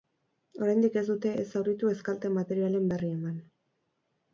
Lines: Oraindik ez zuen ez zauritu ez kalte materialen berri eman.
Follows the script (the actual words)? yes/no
no